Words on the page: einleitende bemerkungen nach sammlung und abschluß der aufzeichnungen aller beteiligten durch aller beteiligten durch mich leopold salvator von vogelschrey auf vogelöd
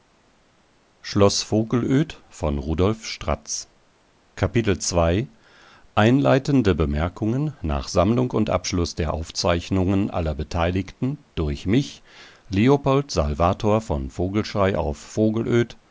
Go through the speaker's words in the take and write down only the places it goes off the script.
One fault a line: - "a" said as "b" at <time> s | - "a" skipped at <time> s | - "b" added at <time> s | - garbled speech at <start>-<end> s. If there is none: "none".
- "aller beteiligten durch" skipped at 11.7 s